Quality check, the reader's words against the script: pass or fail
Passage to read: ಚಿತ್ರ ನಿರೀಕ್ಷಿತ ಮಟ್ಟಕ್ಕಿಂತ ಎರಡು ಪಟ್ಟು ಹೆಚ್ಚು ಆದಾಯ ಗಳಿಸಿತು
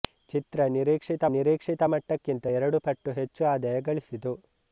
fail